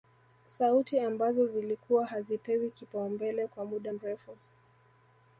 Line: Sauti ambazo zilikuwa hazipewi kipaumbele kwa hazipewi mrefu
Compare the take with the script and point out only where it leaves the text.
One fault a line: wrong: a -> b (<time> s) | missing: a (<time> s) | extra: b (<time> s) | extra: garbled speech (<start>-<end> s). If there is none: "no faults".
wrong: hazipewi -> muda (3.6 s)